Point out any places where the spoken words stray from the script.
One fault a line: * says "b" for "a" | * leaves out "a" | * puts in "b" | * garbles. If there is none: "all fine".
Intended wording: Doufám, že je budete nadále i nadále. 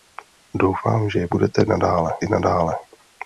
all fine